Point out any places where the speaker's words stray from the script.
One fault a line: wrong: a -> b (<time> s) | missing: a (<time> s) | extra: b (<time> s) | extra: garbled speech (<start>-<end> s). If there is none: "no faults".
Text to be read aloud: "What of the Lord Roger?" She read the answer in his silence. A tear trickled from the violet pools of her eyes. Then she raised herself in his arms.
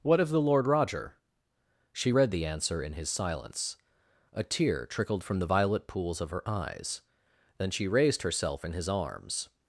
no faults